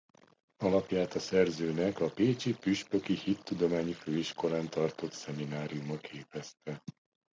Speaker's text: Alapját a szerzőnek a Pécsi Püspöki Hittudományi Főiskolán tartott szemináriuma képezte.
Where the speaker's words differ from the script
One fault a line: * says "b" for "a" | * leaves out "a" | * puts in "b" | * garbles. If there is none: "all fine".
all fine